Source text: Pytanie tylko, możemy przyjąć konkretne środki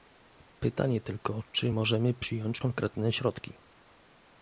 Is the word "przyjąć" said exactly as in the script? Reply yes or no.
yes